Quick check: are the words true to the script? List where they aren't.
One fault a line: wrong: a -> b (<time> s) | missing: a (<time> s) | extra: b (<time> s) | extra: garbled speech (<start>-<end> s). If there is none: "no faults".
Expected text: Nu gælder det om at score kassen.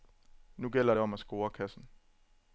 no faults